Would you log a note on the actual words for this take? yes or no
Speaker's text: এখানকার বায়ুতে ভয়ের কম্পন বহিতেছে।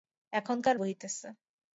yes